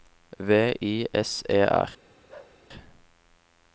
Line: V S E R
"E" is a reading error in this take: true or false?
false